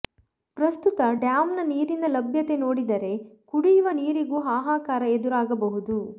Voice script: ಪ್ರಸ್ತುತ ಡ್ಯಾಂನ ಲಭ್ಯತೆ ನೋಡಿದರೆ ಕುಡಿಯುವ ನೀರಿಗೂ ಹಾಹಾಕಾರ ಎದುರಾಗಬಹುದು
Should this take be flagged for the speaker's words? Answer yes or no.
yes